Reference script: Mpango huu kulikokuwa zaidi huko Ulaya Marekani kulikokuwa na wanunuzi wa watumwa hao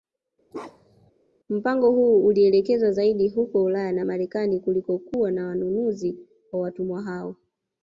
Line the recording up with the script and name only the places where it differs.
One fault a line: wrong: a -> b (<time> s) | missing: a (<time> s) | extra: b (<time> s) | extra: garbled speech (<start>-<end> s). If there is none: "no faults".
wrong: kulikokuwa -> ulielekezwa (2.3 s)
extra: na (3.9 s)